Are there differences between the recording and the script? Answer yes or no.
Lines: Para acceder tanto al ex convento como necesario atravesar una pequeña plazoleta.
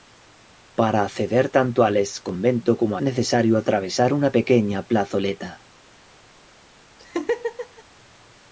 no